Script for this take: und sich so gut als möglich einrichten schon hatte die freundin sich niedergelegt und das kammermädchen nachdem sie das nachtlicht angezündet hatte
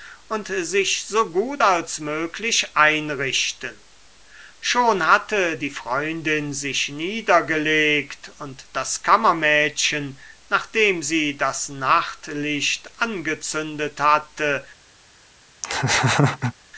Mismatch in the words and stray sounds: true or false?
true